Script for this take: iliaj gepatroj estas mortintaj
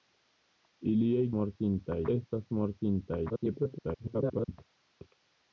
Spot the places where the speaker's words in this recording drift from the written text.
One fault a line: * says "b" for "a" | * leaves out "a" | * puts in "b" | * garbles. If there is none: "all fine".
* says "mortintaj" for "gepatroj"
* garbles